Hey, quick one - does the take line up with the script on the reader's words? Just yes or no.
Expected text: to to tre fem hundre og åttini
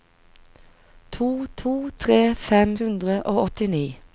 yes